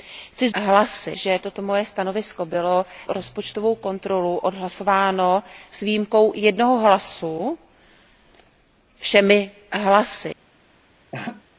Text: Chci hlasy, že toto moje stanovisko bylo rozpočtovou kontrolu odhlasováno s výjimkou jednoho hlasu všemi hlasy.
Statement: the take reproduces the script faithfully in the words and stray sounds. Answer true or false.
false